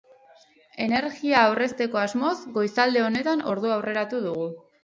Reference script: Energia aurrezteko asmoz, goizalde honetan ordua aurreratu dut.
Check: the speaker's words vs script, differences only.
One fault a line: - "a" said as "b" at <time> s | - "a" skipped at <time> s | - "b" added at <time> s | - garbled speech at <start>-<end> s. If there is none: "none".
- "dut" said as "dugu" at 4.3 s